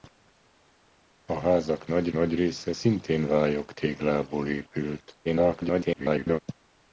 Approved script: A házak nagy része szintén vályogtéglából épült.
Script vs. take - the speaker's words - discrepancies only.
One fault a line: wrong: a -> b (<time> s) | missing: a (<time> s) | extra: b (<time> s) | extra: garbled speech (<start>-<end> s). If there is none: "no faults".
extra: nagy (2.1 s)
extra: garbled speech (5.2-6.4 s)